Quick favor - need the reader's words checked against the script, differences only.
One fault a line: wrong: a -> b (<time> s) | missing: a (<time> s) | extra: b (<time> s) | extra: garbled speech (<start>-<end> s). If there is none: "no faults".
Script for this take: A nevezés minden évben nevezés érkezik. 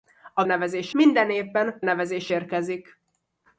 no faults